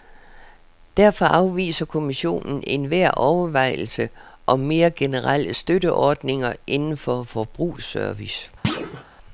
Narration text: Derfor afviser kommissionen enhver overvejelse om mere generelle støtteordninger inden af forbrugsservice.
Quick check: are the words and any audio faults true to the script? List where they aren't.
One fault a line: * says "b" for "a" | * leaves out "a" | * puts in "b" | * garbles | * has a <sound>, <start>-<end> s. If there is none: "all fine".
* says "for" for "af"
* has a thud, 8.6-9.0 s